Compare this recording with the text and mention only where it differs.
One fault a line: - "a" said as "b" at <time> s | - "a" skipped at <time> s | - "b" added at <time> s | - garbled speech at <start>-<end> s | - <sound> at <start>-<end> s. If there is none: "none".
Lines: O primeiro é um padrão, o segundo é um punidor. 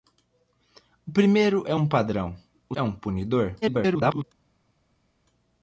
- "segundo" skipped at 2.7 s
- garbled speech at 3.6-4.2 s